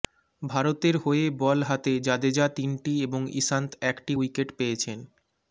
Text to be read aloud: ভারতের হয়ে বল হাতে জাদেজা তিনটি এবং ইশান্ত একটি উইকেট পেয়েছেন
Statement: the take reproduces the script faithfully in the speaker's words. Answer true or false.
true